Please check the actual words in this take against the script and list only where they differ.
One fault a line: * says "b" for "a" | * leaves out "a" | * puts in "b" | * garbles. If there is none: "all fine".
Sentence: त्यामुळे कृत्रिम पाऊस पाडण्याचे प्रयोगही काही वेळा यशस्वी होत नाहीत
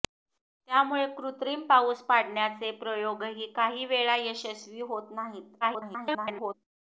* garbles